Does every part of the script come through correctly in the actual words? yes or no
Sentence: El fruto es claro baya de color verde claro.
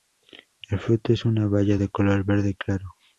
no